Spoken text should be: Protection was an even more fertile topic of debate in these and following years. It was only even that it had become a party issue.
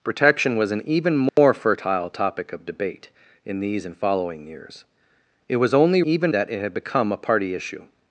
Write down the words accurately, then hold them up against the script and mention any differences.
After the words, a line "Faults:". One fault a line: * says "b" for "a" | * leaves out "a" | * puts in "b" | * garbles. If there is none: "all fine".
Protection was an even more fertile topic of debate in these and following years. It was only even that it had become a party issue.
Faults:
all fine